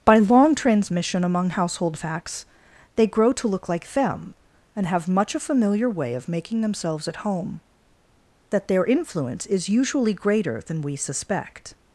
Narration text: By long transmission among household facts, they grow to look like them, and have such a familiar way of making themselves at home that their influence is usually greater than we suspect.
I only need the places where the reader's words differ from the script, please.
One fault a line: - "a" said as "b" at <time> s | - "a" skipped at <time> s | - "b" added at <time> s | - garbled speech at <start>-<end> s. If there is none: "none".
- "such" said as "much" at 5.1 s